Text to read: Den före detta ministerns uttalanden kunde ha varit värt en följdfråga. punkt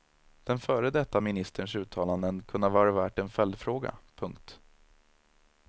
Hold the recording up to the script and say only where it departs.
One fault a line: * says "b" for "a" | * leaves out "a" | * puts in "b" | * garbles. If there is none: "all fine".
all fine